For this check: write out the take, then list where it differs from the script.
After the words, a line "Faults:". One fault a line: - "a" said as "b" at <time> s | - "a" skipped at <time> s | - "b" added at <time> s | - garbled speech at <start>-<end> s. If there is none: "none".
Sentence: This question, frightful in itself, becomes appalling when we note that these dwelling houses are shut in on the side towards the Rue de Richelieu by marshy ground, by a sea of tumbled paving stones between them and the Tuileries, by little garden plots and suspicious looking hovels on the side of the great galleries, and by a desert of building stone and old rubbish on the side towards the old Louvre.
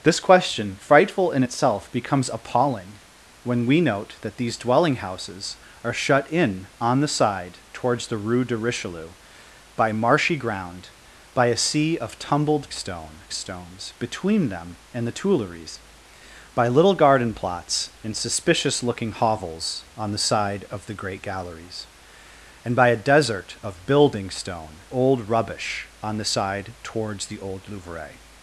This question, frightful in itself, becomes appalling when we note that these dwelling houses are shut in on the side towards the Rue de Richelieu by marshy ground, by a sea of tumbled stone stones between them and the Tuileries, by little garden plots and suspicious looking hovels on the side of the great galleries, and by a desert of building stone old rubbish on the side towards the old Louvre.
Faults:
- "paving" said as "stone" at 12.7 s
- "and" skipped at 24.8 s